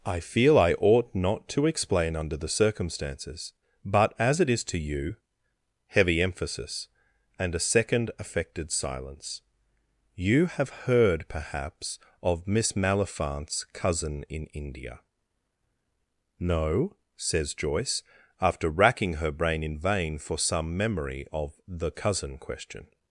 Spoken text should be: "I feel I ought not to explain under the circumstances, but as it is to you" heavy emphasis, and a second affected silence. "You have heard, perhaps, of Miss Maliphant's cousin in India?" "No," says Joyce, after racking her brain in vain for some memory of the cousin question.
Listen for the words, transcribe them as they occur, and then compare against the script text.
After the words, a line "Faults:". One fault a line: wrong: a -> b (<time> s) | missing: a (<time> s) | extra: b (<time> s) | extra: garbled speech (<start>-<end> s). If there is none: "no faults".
"I feel I ought not to explain under the circumstances, but as it is to you" heavy emphasis, and a second affected silence. "You have heard, perhaps, of Miss Maliphant's cousin in India?" "No," says Joyce, after racking her brain in vain for some memory of the cousin question.
Faults:
no faults